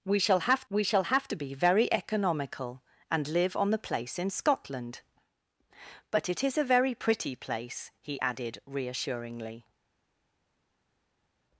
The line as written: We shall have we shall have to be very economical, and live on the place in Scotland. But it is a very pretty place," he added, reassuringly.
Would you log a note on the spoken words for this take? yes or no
no